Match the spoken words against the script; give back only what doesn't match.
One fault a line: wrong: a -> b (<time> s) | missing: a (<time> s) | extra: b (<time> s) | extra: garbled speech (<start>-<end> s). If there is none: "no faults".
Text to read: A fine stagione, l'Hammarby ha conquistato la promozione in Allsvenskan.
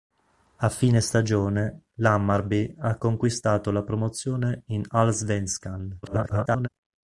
extra: garbled speech (6.0-6.7 s)